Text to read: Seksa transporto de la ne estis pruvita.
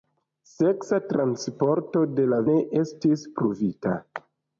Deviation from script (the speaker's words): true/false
false